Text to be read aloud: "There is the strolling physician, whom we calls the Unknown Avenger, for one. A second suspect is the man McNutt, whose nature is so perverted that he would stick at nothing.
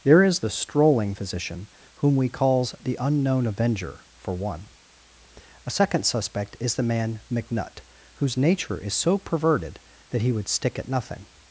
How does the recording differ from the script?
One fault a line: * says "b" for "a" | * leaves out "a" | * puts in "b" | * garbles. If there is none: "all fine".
all fine